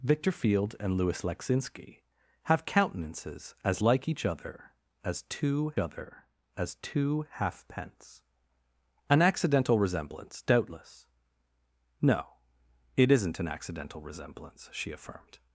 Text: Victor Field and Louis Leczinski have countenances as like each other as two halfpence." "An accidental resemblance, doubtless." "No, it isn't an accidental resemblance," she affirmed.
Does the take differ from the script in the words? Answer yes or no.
yes